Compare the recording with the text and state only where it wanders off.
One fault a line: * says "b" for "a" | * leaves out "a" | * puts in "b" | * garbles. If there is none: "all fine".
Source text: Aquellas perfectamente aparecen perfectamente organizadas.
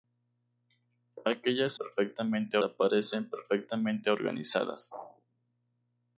all fine